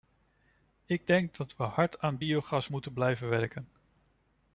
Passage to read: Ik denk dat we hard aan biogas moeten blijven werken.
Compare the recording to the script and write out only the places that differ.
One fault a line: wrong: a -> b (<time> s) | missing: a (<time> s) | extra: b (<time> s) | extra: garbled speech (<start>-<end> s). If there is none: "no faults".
no faults